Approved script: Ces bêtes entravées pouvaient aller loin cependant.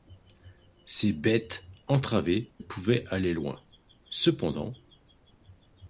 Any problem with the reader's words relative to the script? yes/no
no